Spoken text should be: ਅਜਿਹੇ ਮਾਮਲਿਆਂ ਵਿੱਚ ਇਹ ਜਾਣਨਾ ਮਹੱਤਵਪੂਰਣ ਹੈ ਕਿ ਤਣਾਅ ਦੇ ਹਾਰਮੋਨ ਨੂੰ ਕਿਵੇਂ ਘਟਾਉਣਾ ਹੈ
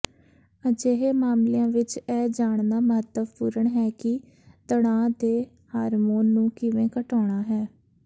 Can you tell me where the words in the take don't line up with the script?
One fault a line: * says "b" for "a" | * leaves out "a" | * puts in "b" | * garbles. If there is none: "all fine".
all fine